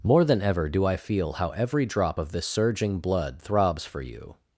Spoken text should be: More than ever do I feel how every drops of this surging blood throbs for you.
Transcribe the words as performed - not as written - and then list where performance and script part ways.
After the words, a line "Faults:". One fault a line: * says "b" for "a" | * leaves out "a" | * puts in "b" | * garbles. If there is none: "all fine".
More than ever do I feel how every drop of this surging blood throbs for you.
Faults:
* says "drop" for "drops"